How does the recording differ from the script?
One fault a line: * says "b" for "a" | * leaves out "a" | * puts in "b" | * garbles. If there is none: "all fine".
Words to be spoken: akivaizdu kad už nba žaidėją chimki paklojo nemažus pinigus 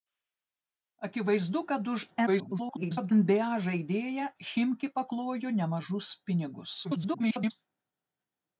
* garbles
* garbles